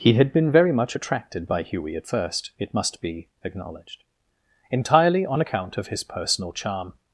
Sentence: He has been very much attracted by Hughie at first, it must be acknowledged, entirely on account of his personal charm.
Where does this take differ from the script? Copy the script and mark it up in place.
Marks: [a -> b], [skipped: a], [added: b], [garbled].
He [has -> had] been very much attracted by Hughie at first, it must be acknowledged, entirely on account of his personal charm.